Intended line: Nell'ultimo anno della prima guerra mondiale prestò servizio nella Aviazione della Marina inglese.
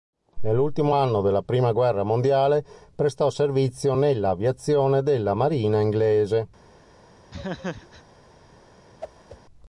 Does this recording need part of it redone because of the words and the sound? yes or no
yes